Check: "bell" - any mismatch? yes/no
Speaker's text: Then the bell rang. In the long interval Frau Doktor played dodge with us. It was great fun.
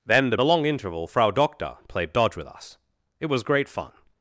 yes